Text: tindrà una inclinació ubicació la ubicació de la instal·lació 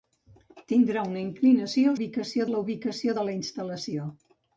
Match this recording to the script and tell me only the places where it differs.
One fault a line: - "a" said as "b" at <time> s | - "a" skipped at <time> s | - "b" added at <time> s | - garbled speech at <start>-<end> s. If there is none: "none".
none